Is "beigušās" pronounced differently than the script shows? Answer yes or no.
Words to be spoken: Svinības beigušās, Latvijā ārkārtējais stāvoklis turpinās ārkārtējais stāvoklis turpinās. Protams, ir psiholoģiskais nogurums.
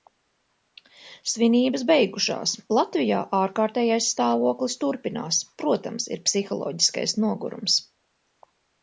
no